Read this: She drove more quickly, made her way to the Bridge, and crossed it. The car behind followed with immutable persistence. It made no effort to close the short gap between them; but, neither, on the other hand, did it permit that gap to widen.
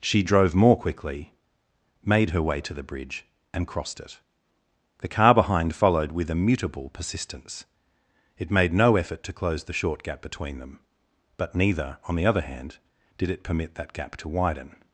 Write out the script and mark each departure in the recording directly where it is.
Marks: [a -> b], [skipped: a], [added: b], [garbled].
She drove more quickly, made her way to the Bridge, and crossed it. The car behind followed with immutable persistence. It made no effort to close the short gap between them; but, neither, on the other hand, did it permit that gap to widen.